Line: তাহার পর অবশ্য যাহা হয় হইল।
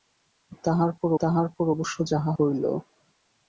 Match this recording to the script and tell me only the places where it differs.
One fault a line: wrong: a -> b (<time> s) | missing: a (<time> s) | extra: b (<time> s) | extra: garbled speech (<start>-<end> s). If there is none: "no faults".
extra: তাহার পর (1.2 s)
missing: হয় (2.3 s)